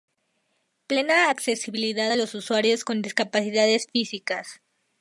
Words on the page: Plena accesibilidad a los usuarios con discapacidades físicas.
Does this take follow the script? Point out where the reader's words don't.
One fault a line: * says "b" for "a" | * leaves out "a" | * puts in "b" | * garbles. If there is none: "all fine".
all fine